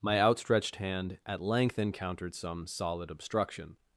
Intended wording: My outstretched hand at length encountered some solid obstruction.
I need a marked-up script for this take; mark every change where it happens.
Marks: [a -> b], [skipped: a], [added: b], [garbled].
My outstretched hand at length encountered some solid obstruction.